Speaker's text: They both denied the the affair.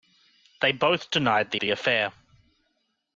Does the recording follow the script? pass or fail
pass